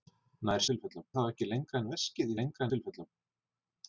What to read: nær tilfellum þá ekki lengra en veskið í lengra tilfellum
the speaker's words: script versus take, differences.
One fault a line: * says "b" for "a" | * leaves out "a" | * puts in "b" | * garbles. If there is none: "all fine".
all fine